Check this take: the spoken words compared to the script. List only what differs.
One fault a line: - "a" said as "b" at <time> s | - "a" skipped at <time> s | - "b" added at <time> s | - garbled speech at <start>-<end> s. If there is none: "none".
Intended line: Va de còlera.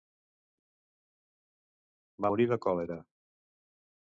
- "morir" added at 2.3 s